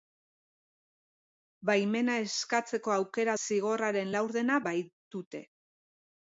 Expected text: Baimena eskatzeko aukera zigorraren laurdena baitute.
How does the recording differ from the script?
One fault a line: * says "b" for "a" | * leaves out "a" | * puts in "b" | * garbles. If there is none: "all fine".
all fine